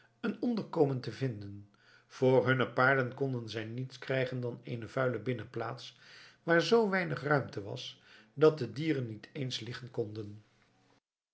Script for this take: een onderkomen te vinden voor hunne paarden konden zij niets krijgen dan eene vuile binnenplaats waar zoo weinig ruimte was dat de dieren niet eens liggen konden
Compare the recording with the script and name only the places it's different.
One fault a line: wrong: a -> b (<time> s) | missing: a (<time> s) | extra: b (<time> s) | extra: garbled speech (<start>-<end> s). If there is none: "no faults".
no faults